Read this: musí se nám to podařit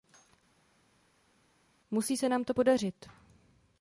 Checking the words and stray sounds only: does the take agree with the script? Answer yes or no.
yes